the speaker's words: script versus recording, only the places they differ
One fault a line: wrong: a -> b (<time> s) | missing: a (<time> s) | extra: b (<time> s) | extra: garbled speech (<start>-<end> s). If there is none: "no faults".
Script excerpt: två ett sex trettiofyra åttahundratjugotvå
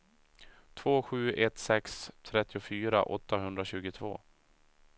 extra: sju (1.0 s)